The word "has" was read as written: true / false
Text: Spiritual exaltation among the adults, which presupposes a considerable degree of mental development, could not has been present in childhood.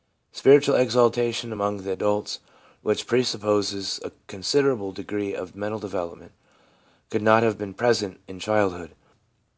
false